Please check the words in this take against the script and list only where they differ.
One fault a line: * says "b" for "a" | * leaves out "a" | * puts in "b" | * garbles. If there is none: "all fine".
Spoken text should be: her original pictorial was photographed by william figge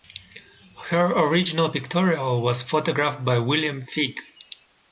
all fine